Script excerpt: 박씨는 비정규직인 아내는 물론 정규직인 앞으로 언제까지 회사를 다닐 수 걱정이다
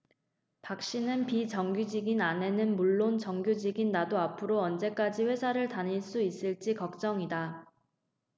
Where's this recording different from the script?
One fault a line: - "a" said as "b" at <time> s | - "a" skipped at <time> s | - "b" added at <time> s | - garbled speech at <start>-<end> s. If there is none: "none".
- "나도" added at 3.9 s
- "있을지" added at 6.2 s